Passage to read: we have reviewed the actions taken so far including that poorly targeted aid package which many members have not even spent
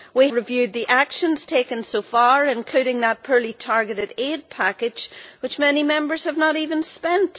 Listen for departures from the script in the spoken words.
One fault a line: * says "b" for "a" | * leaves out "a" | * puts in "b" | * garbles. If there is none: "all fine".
* leaves out "have"